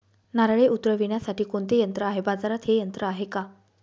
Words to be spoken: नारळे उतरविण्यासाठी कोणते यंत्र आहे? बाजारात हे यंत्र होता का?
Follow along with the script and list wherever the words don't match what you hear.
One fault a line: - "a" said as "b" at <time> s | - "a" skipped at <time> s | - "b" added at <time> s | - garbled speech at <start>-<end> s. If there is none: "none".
- "होता" said as "आहे" at 3.0 s